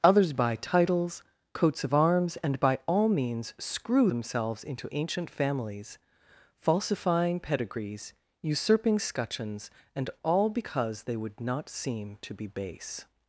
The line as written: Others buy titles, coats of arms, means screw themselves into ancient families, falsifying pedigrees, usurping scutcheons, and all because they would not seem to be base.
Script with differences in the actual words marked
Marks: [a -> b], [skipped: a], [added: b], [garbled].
Others buy titles, coats of arms, [added: and by all] means screw themselves into ancient families, falsifying pedigrees, usurping scutcheons, and all because they would not seem to be base.